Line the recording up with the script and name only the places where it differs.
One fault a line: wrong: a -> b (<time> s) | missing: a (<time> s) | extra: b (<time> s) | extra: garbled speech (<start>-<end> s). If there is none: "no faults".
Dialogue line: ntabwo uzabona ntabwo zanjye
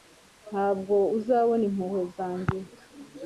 wrong: ntabwo -> impuhwe (1.7 s)